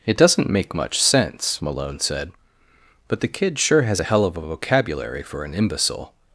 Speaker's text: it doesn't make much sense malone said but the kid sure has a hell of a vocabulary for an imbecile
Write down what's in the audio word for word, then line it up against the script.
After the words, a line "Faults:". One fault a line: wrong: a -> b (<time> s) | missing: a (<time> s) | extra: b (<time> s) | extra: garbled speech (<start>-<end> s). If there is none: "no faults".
it doesn't make much sense malone said but the kid sure has a hell of a vocabulary for an imbecile
Faults:
no faults